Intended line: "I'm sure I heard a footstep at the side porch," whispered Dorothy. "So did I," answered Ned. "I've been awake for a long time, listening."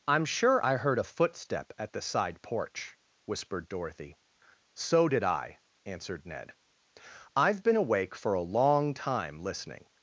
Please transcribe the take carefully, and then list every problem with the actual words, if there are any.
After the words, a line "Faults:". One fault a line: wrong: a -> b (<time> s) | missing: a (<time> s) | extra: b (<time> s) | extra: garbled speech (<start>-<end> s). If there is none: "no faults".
"I'm sure I heard a footstep at the side porch," whispered Dorothy. "So did I," answered Ned. "I've been awake for a long time, listening."
Faults:
no faults